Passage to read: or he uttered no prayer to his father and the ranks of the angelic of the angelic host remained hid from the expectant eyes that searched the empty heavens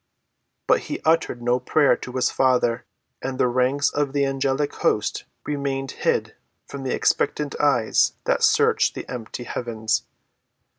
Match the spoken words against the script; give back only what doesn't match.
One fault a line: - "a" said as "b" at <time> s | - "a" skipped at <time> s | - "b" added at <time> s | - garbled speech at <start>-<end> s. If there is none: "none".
- "or" said as "but" at 0.7 s
- "of the angelic" skipped at 4.7 s